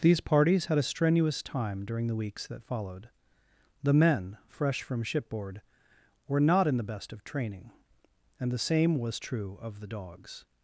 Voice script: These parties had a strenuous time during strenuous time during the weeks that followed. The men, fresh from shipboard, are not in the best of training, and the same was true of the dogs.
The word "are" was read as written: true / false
false